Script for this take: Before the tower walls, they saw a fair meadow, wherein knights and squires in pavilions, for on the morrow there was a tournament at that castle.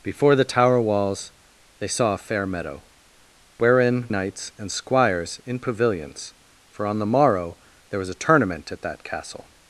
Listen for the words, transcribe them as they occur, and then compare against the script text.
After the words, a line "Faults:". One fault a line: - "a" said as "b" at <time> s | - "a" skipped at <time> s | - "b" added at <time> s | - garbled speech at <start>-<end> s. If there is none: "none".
Before the tower walls, they saw a fair meadow, wherein knights and squires in pavilions, for on the morrow there was a tournament at that castle.
Faults:
none